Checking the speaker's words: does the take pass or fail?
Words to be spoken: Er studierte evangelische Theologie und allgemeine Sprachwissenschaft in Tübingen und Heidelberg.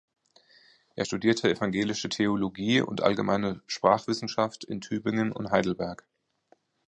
pass